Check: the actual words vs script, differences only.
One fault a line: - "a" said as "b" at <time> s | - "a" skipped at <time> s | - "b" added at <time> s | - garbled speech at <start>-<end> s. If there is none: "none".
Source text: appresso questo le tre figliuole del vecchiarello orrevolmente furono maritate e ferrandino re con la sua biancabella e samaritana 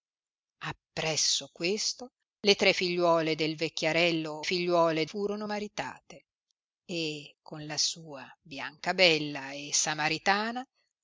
- "orrevolmente" said as "figliuole" at 4.4 s
- "ferrandino re" skipped at 7.3 s